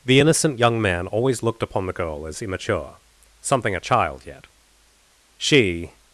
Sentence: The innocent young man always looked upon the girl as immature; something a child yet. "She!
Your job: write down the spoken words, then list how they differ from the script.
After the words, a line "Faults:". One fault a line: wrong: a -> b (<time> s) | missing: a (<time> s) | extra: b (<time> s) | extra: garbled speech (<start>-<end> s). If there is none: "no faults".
The innocent young man always looked upon the girl as immature; something a child yet. "She!
Faults:
no faults